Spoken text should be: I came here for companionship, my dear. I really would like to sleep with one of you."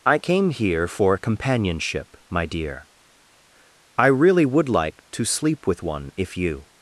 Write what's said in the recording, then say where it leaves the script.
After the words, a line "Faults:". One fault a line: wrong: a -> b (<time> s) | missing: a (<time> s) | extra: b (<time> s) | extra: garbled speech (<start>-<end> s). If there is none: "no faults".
I came here for companionship, my dear. I really would like to sleep with one if you."
Faults:
wrong: of -> if (6.2 s)